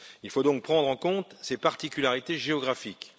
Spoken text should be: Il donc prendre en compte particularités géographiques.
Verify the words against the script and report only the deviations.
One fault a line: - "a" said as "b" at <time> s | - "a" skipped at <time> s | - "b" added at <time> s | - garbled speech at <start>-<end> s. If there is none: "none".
- "faut" added at 0.3 s
- "ces" added at 1.4 s